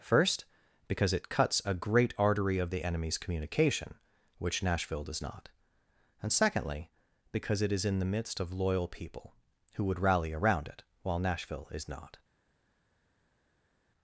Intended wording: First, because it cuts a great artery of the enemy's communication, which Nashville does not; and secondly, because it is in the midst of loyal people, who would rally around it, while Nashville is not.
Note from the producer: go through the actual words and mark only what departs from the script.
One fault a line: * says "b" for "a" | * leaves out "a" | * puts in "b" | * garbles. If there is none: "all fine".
all fine